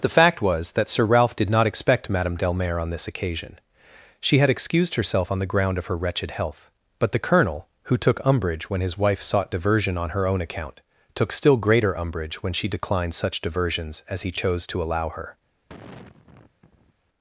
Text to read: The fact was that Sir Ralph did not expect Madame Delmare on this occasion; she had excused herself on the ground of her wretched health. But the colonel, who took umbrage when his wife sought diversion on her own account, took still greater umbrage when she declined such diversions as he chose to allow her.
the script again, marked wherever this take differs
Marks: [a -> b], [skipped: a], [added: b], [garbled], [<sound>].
The fact was that Sir Ralph did not expect Madame Delmare on this occasion; she had excused herself on the ground of her wretched health. But the colonel, who took umbrage when his wife sought diversion on her own account, took still greater umbrage when she declined such diversions as he chose to allow her. [sigh]